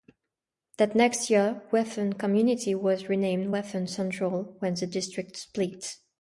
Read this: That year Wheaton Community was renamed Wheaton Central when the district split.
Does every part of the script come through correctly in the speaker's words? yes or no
no